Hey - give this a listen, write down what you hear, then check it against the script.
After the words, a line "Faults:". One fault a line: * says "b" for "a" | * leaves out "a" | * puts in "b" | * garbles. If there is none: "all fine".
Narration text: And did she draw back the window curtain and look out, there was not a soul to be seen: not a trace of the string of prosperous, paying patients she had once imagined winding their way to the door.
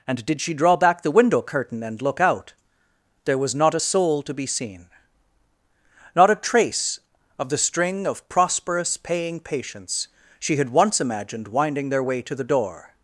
And did she draw back the window curtain and look out, there was not a soul to be seen: not a trace of the string of prosperous, paying patients she had once imagined winding their way to the door.
Faults:
all fine